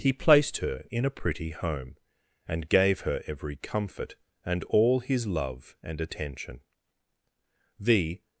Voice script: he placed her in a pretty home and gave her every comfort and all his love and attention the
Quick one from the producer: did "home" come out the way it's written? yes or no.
yes